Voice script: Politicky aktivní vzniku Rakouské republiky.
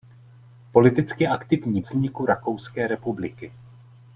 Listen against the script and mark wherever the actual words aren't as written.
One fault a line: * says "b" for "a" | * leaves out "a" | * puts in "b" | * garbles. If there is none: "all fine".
all fine